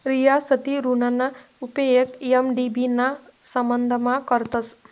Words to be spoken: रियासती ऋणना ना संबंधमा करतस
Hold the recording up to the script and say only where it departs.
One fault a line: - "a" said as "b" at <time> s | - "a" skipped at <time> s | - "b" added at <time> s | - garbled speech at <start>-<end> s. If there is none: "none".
- "उपेग एम.डी.बी" added at 1.6 s